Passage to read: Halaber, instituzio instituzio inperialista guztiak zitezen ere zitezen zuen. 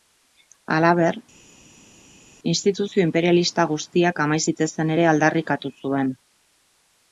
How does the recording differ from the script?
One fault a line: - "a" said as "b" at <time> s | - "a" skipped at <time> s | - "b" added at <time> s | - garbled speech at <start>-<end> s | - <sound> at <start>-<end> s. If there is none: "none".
- "instituzio" skipped at 3.0 s
- "amai" added at 4.2 s
- "zitezen" said as "aldarrikatu" at 5.1 s